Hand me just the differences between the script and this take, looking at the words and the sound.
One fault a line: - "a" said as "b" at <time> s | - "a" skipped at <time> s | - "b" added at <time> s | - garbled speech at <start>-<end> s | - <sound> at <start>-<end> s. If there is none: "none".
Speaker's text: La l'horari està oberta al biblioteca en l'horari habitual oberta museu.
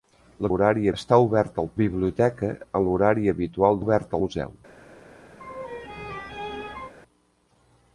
- laugh at 5.4-6.9 s